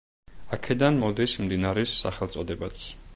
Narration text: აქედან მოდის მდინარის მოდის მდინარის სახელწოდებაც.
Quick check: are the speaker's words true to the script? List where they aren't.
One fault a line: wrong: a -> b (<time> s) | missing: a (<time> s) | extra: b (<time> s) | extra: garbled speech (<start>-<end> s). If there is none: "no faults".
missing: მოდის მდინარის (2.0 s)